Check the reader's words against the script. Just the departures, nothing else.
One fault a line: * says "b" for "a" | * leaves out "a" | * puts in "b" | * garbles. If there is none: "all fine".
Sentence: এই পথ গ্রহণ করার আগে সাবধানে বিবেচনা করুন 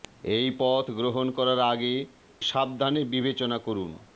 all fine